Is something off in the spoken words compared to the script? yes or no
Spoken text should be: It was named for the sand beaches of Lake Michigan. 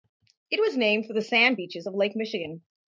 no